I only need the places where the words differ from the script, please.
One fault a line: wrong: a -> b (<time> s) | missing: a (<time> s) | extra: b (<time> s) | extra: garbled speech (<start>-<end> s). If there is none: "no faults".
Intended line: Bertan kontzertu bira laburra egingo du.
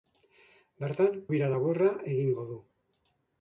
missing: kontzertu (1.2 s)